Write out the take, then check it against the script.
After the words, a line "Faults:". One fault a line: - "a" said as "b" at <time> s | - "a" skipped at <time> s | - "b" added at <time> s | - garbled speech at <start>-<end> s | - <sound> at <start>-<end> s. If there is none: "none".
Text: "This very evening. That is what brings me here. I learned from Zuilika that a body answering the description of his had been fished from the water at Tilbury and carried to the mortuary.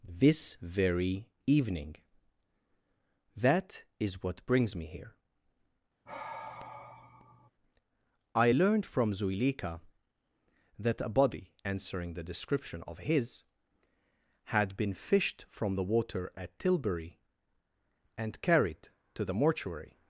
"This very evening. That is what brings me here. I learned from Zuilika that a body answering the description of his had been fished from the water at Tilbury and carried to the mortuary.
Faults:
- sigh at 6.1-7.5 s